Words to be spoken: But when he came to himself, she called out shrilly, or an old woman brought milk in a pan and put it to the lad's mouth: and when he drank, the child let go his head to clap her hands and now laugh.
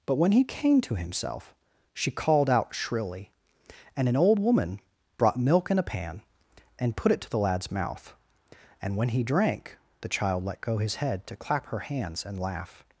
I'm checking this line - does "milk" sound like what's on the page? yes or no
yes